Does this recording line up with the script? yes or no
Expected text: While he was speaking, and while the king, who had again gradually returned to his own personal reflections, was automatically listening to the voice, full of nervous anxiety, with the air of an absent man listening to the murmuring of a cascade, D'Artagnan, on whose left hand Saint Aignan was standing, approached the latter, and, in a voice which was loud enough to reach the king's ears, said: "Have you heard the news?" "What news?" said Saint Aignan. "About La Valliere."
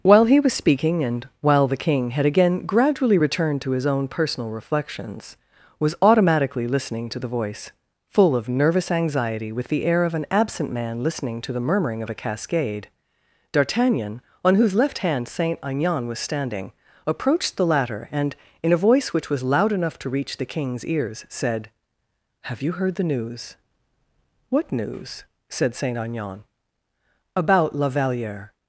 no